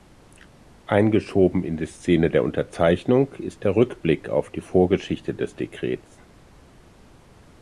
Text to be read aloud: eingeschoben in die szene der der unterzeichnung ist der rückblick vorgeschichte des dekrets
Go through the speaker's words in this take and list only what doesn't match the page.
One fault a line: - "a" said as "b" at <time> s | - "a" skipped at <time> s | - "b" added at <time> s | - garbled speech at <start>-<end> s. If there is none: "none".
- "der" skipped at 2.4 s
- "auf die" added at 4.3 s